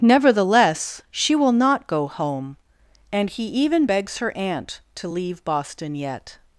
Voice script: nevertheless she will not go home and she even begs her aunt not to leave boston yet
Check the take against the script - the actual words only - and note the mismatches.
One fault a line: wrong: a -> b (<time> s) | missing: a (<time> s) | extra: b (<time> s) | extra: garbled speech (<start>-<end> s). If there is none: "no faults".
wrong: she -> he (3.3 s)
missing: not (4.8 s)